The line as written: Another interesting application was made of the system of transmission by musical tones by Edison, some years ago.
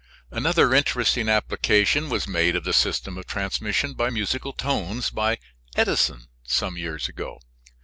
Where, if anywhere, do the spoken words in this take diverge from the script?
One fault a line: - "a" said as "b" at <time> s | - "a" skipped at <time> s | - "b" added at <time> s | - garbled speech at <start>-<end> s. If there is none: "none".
none